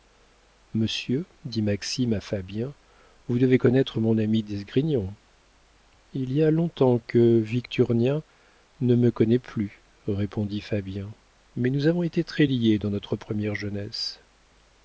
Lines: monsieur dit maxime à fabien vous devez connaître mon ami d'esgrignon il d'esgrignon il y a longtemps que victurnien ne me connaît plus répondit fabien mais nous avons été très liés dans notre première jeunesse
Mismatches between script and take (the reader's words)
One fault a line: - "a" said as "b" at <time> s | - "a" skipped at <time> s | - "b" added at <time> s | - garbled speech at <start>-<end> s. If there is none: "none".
- "d'esgrignon il" skipped at 6.3 s